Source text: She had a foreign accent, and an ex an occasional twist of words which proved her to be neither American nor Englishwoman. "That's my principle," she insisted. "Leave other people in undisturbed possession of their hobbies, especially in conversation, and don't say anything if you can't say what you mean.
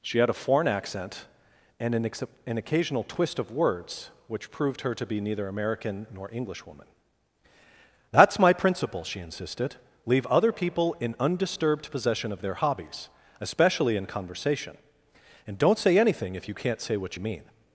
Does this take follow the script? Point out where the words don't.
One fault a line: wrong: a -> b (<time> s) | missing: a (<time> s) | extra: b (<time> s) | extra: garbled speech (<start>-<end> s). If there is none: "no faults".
no faults